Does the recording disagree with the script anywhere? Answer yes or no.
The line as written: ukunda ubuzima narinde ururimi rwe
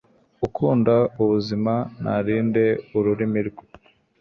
no